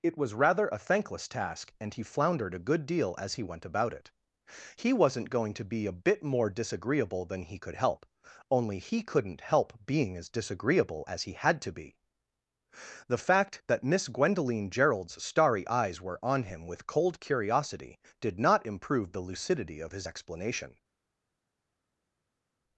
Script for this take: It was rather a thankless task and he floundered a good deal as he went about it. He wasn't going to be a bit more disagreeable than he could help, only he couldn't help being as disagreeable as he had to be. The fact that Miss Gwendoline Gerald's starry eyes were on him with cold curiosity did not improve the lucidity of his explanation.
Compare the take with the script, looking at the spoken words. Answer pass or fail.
pass